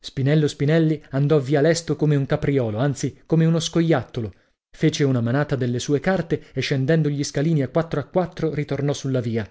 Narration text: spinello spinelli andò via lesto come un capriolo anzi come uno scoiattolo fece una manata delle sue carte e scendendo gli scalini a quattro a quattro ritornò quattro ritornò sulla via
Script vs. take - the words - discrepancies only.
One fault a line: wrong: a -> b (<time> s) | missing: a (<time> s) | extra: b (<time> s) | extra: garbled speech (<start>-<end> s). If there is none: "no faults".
missing: quattro ritornò (8.9 s)